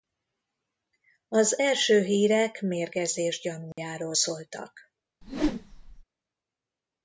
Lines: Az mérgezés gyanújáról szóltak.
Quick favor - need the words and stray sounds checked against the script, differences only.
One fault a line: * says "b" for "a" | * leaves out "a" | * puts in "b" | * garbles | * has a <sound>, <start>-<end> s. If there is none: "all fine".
* puts in "első hírek"
* has a dropout, 3.7-3.8 s
* has a whoosh, 5.2-6.0 s